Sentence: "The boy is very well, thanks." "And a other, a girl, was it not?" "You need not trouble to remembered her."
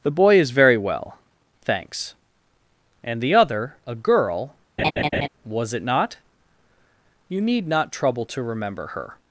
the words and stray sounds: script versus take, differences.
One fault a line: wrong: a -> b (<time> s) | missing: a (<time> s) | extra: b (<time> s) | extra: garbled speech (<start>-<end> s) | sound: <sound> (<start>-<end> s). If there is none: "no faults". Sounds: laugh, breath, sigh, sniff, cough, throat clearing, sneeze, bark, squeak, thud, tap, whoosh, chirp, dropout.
wrong: a -> the (3.2 s)
sound: laugh (4.8-5.3 s)
wrong: remembered -> remember (8.4 s)